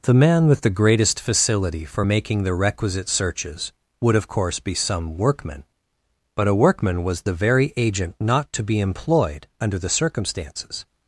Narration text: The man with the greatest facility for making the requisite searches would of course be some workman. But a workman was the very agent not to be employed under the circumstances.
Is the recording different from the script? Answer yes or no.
no